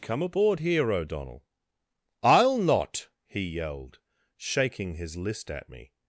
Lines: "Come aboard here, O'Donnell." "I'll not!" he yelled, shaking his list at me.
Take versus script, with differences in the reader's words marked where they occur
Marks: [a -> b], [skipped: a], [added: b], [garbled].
"Come aboard here, O'Donnell." "I'll not!" he yelled, shaking his list at me.